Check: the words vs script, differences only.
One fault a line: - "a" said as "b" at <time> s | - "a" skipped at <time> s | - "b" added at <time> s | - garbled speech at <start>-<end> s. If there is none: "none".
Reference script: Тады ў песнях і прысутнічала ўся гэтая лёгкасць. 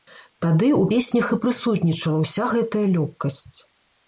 none